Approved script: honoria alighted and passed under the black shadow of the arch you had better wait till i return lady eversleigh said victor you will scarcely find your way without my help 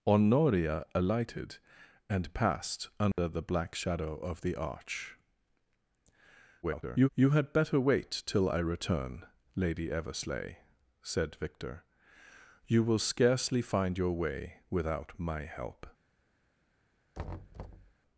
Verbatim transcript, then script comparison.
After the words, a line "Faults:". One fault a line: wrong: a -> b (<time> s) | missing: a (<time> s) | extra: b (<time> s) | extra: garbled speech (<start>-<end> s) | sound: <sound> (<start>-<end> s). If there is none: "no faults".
honoria alighted and passed under the black shadow of the arch [garbled] you had better wait till i return lady eversleigh said victor you will scarcely find your way without my help
Faults:
sound: dropout (3.1-3.2 s)
extra: garbled speech (6.6-7.1 s)
sound: thud (17.1-17.9 s)